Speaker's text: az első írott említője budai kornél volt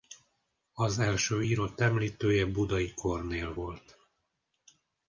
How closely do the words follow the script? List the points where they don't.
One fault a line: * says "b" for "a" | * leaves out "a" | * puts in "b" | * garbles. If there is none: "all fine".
all fine